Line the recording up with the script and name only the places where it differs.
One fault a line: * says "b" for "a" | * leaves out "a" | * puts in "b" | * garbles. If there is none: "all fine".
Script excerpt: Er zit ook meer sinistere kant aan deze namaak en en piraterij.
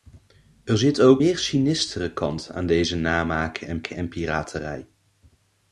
all fine